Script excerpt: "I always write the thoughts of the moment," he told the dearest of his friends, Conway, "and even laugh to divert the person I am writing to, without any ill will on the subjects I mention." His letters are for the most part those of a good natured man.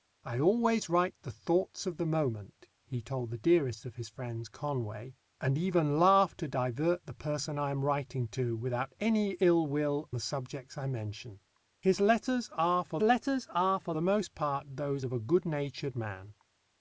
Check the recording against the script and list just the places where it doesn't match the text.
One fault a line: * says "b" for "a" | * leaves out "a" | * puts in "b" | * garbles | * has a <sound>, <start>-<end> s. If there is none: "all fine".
* leaves out "on"
* puts in "letters are for"